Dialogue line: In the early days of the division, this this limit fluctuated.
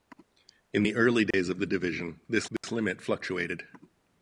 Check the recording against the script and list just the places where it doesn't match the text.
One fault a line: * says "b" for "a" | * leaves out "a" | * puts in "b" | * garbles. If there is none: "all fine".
all fine